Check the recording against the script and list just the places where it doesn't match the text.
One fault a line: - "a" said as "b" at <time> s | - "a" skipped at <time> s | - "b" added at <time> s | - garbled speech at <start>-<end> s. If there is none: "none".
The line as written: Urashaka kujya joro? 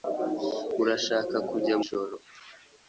none